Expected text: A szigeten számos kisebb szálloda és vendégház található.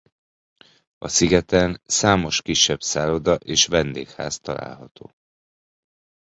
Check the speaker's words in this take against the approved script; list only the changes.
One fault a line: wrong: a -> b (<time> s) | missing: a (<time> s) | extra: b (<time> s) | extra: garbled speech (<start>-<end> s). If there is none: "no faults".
no faults